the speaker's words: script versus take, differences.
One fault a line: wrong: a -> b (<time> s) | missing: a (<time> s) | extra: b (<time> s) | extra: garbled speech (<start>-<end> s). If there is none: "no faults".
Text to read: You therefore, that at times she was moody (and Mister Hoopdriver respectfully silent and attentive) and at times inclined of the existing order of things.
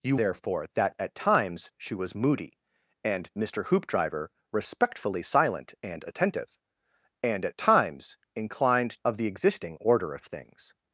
no faults